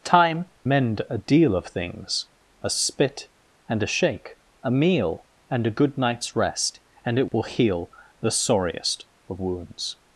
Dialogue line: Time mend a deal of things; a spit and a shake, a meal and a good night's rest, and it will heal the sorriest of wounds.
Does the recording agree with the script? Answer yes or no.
yes